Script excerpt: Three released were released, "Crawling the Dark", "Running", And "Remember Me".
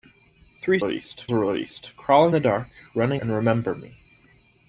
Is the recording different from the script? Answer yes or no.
no